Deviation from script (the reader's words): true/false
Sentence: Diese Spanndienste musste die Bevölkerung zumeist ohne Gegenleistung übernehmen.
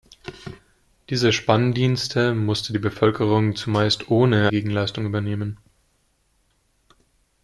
false